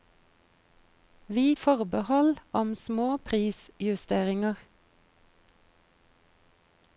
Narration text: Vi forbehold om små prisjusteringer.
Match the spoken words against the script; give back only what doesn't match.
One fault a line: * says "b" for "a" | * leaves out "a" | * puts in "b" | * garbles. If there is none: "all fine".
all fine